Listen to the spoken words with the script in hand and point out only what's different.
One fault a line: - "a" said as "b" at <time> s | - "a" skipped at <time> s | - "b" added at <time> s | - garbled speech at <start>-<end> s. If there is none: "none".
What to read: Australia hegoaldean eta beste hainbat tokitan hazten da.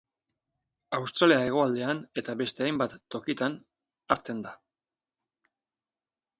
none